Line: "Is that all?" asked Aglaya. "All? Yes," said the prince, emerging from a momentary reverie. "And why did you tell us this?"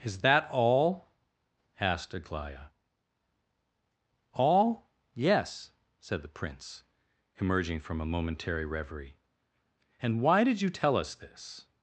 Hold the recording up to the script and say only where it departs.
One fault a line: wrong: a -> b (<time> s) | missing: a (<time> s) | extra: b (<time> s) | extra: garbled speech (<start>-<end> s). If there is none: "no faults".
no faults